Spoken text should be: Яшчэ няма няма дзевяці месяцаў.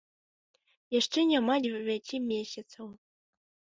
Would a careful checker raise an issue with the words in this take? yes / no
yes